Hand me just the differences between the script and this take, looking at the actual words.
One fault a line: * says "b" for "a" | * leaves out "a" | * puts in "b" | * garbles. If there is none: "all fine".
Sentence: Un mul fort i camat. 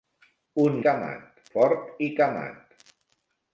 * says "camat" for "mul"